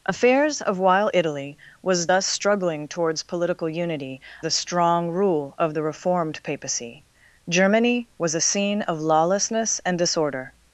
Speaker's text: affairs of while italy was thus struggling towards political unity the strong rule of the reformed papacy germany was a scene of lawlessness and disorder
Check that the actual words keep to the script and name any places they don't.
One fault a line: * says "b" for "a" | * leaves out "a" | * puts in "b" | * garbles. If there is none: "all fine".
all fine